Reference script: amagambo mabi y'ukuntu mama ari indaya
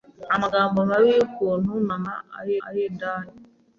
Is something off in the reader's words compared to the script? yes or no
yes